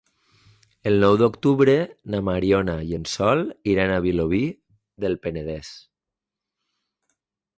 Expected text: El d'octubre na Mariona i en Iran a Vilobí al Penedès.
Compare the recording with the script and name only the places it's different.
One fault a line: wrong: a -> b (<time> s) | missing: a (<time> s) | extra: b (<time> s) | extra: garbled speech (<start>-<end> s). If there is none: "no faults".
extra: nou (1.0 s)
extra: Sol (3.2 s)
wrong: al -> del (5.1 s)